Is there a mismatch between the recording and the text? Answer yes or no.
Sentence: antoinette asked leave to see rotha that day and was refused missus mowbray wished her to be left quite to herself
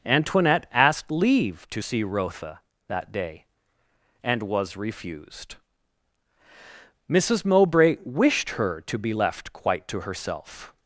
no